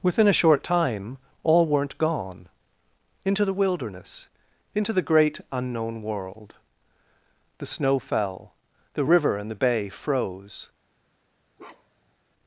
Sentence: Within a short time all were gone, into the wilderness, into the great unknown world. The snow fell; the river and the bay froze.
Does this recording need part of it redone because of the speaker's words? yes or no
yes